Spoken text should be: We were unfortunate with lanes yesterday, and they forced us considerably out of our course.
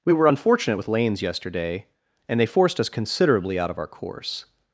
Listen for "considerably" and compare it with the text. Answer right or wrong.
right